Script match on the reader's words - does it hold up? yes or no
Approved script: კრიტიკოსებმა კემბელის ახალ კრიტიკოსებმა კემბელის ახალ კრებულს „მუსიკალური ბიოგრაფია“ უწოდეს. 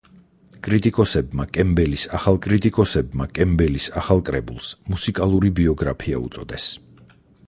yes